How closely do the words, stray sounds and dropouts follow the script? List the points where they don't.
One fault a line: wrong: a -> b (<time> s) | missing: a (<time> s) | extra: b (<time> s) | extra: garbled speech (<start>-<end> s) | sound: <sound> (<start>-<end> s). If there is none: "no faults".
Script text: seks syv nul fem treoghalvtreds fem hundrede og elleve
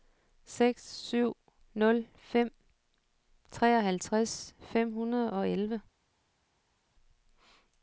no faults